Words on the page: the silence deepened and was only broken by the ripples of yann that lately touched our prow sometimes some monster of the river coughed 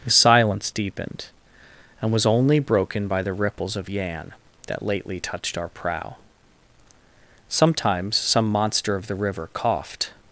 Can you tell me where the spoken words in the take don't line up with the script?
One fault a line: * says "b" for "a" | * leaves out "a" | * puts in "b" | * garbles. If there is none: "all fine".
all fine